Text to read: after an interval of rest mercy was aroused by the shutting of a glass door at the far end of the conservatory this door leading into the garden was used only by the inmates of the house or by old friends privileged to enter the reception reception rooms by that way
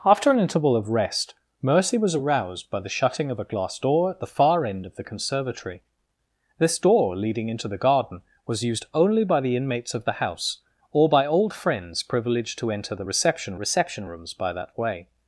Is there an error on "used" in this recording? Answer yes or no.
no